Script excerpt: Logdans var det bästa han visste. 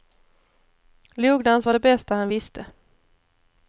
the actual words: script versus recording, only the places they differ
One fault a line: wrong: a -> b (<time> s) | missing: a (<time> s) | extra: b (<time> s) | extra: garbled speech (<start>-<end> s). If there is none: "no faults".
no faults